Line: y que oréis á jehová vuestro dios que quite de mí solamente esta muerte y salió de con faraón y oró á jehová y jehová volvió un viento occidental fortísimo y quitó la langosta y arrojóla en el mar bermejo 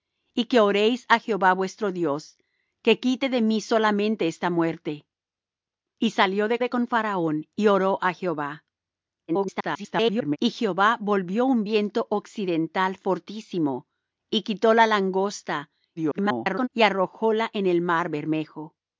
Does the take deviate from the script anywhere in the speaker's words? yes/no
yes